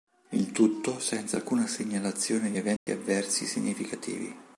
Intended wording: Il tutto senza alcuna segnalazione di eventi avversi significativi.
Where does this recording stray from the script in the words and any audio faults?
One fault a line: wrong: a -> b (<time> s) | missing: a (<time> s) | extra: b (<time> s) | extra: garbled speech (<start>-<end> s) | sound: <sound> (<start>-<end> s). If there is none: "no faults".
sound: dropout (2.8-2.9 s)